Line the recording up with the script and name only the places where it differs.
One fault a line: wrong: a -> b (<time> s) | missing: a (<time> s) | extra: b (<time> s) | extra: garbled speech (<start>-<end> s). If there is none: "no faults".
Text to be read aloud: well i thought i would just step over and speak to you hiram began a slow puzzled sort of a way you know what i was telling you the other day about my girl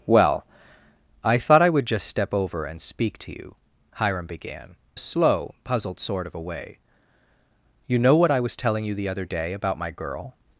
no faults